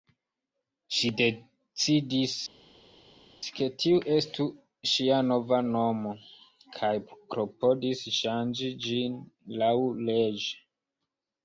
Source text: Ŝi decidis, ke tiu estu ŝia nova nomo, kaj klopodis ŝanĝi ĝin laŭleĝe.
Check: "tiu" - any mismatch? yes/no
no